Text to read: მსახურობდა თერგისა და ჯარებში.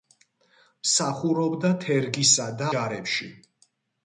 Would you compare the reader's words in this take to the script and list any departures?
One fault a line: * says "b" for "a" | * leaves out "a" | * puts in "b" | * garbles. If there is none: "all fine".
all fine